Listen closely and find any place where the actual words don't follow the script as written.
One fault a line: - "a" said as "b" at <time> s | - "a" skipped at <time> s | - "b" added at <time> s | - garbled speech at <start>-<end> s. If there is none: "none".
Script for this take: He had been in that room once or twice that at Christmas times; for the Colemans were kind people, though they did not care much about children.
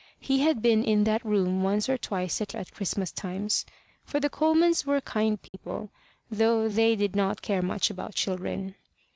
none